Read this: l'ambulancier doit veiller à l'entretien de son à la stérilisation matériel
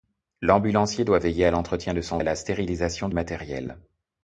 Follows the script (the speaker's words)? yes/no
yes